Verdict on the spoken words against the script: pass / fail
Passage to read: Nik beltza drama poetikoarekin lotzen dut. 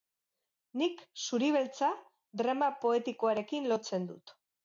fail